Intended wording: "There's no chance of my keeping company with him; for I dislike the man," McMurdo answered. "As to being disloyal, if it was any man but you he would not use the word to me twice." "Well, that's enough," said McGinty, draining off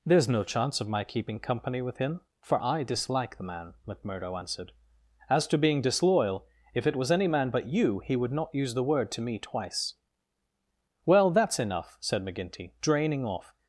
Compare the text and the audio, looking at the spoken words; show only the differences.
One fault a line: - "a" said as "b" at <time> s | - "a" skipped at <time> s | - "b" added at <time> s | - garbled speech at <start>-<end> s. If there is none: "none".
none